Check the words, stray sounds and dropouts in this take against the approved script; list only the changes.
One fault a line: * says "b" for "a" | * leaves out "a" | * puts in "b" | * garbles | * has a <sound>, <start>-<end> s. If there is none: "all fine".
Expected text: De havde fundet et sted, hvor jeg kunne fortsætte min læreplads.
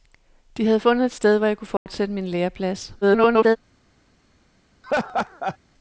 * has a dropout, 1.8-1.9 s
* garbles
* has a laugh, 4.8-5.6 s